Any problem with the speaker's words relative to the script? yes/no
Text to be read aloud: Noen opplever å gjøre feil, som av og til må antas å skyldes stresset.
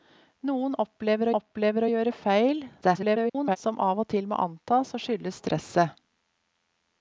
yes